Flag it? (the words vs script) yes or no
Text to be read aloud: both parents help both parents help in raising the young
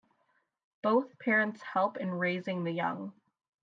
yes